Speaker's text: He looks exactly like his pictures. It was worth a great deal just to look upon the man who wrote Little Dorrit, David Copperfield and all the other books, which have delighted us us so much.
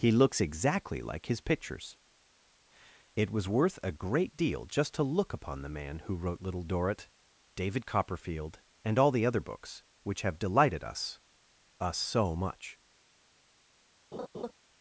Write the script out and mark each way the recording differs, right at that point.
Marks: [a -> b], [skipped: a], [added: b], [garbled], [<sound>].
He looks exactly like his pictures. It was worth a great deal just to look upon the man who wrote Little Dorrit, David Copperfield and all the other books, which have delighted us us so much. [laugh]